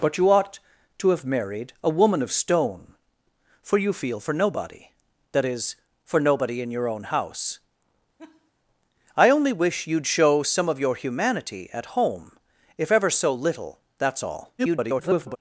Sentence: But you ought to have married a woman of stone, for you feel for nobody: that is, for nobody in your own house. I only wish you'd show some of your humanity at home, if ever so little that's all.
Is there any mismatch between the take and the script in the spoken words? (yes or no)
yes